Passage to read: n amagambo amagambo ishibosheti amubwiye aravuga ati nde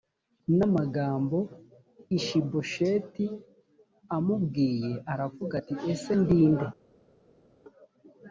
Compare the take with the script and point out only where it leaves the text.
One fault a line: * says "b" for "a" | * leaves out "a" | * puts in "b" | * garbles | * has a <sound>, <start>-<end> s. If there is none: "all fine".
* leaves out "amagambo"
* puts in "ese ndi"